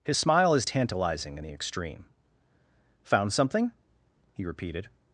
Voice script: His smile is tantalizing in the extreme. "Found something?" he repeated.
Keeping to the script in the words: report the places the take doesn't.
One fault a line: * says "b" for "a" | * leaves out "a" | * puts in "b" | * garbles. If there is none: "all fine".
all fine